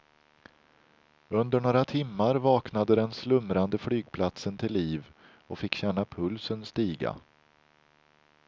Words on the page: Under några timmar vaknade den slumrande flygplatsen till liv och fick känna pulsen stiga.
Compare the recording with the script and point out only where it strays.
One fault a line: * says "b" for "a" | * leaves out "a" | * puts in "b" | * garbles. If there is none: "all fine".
all fine